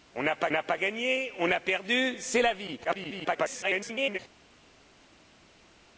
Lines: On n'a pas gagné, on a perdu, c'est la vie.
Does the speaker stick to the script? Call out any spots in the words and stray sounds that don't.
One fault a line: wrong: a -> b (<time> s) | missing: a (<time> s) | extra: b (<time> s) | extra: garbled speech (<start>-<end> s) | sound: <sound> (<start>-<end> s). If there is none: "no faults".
extra: n'a pas (0.5 s)
extra: garbled speech (2.8-4.2 s)